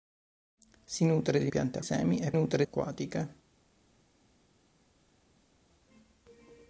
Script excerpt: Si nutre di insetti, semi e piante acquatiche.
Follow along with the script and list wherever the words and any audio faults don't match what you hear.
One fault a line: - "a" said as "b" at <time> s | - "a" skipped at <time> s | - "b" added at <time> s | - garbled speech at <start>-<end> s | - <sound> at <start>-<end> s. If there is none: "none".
- "insetti" said as "piante" at 1.4 s
- "piante" said as "nutre" at 2.3 s